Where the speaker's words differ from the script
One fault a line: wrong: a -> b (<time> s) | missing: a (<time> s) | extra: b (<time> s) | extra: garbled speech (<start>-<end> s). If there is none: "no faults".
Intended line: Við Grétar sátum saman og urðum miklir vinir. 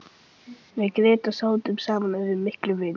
no faults